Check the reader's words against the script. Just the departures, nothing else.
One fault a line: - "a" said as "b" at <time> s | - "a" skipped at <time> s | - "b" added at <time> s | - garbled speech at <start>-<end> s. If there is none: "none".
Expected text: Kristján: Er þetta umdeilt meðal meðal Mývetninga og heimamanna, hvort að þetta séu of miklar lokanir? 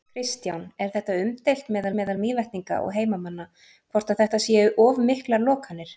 none